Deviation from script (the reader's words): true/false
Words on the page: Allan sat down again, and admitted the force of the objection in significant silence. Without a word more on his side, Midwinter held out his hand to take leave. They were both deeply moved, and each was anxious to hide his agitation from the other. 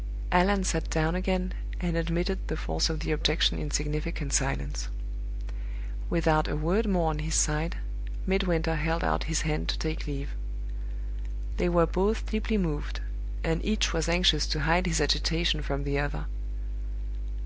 false